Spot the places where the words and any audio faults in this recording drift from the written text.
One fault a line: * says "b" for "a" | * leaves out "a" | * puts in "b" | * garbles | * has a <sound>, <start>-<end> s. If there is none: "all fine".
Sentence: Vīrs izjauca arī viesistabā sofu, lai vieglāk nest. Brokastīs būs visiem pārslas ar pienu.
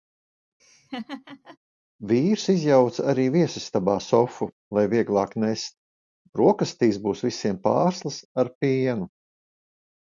* has a laugh, 0.6-1.6 s